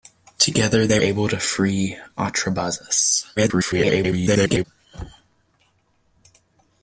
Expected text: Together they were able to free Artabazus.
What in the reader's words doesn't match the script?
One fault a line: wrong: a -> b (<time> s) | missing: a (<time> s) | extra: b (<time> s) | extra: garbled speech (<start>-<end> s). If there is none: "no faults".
missing: were (1.0 s)
extra: garbled speech (3.4-4.6 s)